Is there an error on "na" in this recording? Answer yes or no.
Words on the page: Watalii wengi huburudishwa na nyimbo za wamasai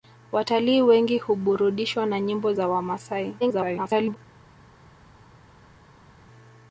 no